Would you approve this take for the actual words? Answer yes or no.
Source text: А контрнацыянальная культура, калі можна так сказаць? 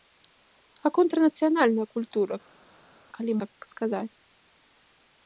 no